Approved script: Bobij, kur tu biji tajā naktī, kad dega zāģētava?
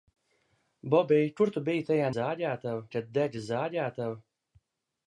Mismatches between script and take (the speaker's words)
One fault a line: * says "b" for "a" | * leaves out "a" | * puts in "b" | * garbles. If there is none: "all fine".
* says "zāģētava" for "naktī"